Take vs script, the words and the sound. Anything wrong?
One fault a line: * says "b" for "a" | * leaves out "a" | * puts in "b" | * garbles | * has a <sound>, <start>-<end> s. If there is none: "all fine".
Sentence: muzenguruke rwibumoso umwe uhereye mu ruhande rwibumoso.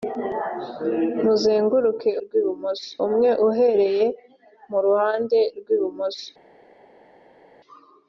all fine